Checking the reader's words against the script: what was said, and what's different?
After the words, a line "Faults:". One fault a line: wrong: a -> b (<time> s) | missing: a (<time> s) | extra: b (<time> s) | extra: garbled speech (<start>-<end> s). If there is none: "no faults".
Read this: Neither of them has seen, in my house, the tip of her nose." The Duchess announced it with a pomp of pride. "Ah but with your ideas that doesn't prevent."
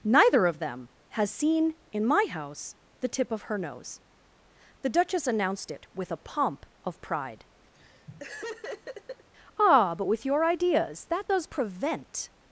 Neither of them has seen, in my house, the tip of her nose." The Duchess announced it with a pomp of pride. "Ah but with your ideas that does prevent."
Faults:
wrong: doesn't -> does (11.3 s)